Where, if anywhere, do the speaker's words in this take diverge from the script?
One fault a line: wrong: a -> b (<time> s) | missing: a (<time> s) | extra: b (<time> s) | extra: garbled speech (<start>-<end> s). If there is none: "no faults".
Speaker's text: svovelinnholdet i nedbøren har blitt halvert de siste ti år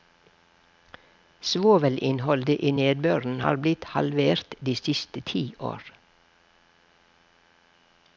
no faults